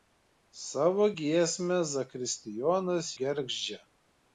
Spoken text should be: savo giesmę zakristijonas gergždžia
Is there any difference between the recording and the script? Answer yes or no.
no